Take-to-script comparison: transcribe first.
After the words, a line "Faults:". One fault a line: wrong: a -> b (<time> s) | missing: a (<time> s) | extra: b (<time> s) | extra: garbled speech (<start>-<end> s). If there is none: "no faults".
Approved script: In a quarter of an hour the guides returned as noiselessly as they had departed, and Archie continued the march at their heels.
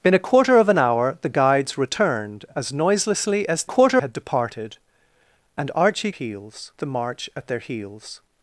In a quarter of an hour the guides returned as noiselessly as quarter had departed, and Archie heels the march at their heels.
Faults:
wrong: they -> quarter (3.6 s)
wrong: continued -> heels (6.1 s)